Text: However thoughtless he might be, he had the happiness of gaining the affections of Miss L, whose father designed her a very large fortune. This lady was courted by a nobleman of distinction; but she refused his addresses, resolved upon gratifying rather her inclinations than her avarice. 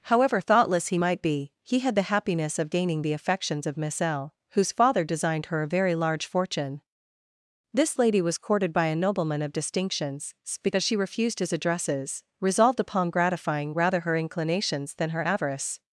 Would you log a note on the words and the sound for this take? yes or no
yes